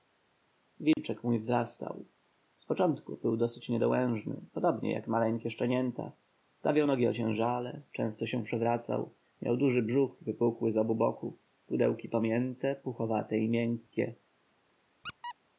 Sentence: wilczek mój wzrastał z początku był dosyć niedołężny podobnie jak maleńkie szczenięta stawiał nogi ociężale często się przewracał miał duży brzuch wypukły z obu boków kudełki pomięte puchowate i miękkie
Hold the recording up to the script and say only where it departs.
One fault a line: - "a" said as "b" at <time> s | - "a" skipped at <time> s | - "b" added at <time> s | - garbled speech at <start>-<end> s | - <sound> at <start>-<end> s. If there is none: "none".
- dropout at 0.9-1.0 s
- squeak at 15.0-15.4 s